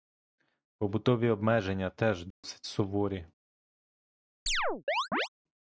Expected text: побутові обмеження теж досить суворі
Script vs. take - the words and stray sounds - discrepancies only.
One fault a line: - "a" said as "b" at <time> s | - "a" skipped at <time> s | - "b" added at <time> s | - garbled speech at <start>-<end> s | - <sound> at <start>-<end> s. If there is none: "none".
- dropout at 2.3-2.4 s
- chirp at 4.5-5.3 s